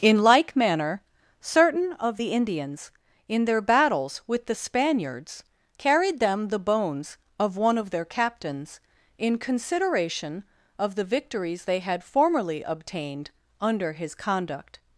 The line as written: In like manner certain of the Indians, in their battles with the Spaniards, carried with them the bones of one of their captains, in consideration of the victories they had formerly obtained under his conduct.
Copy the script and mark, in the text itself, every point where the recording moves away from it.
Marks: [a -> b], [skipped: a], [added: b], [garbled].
In like manner certain of the Indians, in their battles with the Spaniards, carried [skipped: with] them the bones of one of their captains, in consideration of the victories they had formerly obtained under his conduct.